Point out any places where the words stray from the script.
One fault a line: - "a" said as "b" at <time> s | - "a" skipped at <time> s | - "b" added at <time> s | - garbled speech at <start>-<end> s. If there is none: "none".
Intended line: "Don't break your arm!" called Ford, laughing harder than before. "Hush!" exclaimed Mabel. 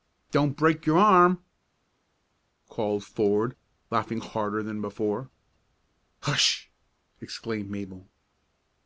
none